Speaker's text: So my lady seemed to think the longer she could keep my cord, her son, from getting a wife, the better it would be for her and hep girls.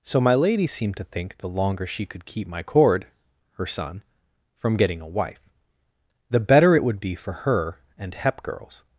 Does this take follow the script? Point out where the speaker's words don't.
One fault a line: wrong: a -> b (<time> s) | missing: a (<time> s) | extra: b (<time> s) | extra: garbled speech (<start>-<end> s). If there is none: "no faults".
no faults